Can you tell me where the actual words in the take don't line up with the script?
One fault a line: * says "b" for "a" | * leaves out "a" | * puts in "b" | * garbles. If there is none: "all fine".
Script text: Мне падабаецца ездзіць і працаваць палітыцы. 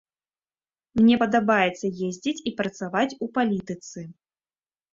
* puts in "у"